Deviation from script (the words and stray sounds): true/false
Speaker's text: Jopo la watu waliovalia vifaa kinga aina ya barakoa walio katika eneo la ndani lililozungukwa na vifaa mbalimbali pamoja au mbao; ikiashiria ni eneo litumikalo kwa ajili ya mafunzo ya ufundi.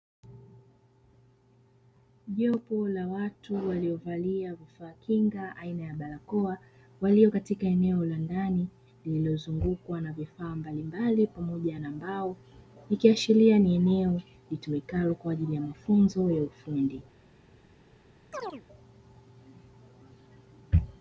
true